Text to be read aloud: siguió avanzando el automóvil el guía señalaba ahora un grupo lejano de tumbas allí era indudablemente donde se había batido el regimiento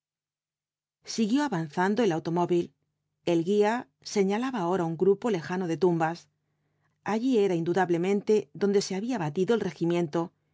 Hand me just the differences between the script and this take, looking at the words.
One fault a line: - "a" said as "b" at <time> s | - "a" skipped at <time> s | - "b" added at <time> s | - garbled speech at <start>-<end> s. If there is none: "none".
none